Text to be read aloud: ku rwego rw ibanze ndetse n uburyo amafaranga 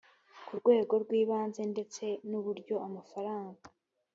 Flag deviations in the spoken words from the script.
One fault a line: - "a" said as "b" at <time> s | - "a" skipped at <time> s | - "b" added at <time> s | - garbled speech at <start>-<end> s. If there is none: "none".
none